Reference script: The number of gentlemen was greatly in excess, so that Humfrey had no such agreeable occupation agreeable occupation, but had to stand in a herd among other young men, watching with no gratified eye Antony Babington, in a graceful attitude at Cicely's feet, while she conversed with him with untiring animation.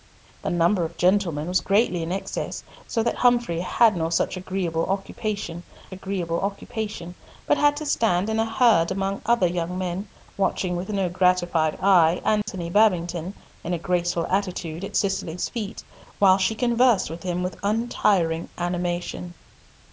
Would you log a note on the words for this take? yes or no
no